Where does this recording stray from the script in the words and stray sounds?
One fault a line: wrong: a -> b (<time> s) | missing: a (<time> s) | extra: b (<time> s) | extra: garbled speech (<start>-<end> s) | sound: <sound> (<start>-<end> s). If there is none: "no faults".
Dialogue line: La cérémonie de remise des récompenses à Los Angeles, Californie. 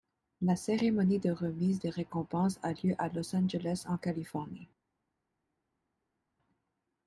extra: a lieu (2.6 s)
extra: en (3.9 s)